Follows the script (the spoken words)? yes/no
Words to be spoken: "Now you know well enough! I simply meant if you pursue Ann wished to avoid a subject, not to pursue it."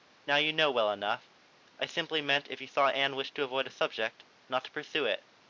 no